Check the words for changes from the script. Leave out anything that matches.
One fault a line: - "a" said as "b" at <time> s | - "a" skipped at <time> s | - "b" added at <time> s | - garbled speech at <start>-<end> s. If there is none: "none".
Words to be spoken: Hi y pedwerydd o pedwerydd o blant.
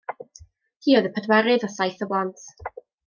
- "oedd" added at 1.0 s
- "pedwerydd" said as "saith" at 1.8 s